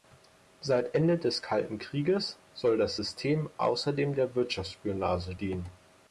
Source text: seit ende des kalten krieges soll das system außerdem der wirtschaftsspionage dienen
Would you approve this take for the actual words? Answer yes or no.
yes